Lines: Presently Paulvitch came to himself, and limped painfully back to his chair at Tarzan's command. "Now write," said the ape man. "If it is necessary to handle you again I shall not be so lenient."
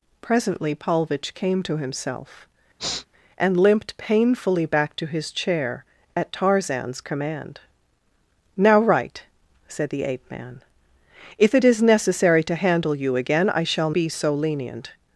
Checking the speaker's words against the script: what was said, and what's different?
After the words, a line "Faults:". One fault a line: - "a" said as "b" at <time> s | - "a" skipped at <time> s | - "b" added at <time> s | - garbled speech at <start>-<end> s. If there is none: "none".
Presently Paulvitch came to himself, and limped painfully back to his chair at Tarzan's command. "Now write," said the ape man. "If it is necessary to handle you again I shall be so lenient."
Faults:
- "not" skipped at 13.9 s